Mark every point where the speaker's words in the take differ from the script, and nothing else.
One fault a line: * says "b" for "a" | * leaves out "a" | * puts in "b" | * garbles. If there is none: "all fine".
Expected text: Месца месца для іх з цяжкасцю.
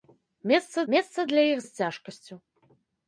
all fine